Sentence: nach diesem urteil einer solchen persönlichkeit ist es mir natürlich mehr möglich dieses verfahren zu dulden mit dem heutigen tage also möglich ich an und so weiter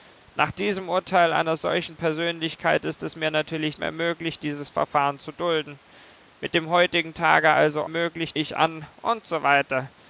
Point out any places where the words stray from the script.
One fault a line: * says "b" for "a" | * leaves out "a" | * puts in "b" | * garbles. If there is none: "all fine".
all fine